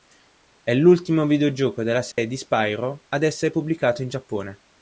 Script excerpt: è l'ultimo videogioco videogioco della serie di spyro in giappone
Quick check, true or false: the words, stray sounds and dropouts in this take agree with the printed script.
false